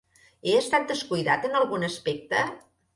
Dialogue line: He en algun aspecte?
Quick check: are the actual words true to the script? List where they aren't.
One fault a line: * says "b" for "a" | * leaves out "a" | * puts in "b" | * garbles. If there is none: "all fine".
* puts in "estat descuidat"